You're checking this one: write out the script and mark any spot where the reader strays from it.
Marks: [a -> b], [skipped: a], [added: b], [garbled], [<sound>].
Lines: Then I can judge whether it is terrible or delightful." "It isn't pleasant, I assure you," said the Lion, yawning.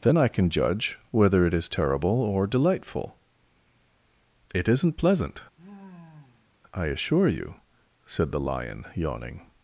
Then I can judge whether it is terrible or delightful." "It isn't pleasant, [sigh] I assure you," said the Lion, yawning.